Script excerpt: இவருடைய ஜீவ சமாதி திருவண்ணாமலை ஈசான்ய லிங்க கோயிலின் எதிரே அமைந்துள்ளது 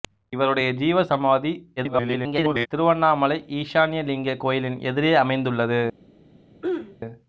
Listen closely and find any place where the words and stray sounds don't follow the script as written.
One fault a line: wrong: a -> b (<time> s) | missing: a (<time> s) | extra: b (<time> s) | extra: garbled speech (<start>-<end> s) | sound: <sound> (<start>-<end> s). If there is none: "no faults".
extra: garbled speech (1.8-2.7 s)
sound: throat clearing (6.6-7.0 s)